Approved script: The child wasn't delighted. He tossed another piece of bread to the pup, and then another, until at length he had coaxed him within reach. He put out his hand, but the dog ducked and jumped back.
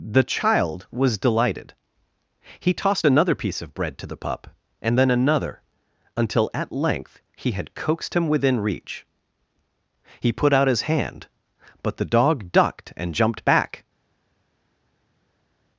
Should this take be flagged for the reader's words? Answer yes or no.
yes